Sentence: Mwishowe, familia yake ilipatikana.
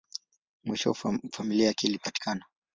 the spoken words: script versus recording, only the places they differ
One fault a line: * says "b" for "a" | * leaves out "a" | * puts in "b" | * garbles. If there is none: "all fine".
all fine